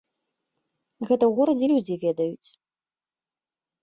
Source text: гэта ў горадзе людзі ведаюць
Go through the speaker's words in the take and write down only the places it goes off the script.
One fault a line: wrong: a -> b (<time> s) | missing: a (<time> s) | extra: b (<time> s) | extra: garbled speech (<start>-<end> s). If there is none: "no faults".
no faults